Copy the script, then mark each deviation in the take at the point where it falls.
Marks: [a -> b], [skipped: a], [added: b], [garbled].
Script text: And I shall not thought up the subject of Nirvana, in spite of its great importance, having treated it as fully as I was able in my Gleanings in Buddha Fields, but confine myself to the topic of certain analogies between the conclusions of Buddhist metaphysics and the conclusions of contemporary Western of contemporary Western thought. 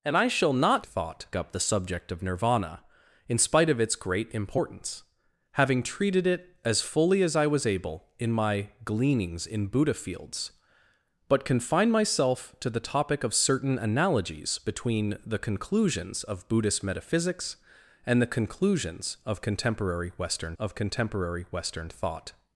And I shall not thought up the subject of Nirvana, in spite of its great importance, having treated it as fully as I was able in my Gleanings in Buddha Fields, but confine myself to the topic of certain analogies between the conclusions of Buddhist metaphysics and the conclusions of contemporary Western of contemporary Western thought.